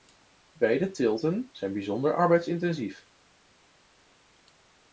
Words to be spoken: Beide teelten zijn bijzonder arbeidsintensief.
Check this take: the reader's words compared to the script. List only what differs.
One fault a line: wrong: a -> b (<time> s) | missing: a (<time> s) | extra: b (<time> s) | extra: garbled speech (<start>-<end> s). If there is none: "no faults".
no faults